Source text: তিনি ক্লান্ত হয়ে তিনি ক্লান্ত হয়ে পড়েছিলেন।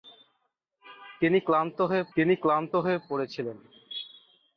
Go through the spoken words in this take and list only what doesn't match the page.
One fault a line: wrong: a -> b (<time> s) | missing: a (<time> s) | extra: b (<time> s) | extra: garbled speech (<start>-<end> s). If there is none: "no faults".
no faults